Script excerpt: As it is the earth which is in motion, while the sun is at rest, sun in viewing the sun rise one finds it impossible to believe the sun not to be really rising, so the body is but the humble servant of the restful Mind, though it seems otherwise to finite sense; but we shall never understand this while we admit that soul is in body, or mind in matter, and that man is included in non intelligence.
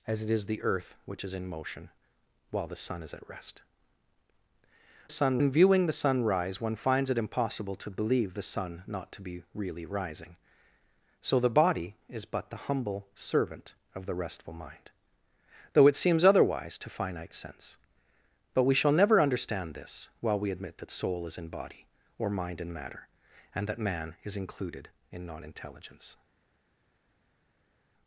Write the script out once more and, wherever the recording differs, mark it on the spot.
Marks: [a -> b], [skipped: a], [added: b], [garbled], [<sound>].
As it is the earth which is in motion, while the sun is at rest, sun in viewing the sun rise one finds it impossible to believe the sun not to be really rising, so the body is but the humble servant of the restful Mind, though it seems otherwise to finite sense; but we shall never understand this while we admit that soul is in body, or mind in matter, and that man is included in non intelligence.